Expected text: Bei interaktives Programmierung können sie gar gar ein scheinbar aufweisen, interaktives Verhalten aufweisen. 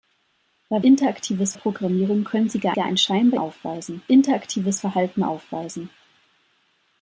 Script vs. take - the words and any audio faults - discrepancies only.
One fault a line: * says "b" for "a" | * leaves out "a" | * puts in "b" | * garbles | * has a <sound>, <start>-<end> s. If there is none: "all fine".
all fine